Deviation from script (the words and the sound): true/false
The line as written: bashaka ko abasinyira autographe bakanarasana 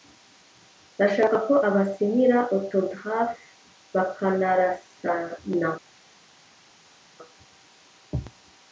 false